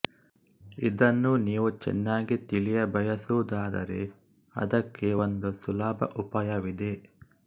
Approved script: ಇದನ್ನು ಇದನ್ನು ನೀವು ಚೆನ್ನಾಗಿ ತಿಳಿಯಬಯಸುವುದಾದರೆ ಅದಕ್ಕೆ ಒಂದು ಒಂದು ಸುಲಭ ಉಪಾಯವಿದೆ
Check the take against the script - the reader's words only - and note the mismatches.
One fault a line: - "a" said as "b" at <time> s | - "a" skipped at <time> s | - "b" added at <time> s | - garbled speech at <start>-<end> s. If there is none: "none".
- "ಇದನ್ನು" skipped at 1.3 s
- "ಒಂದು" skipped at 5.5 s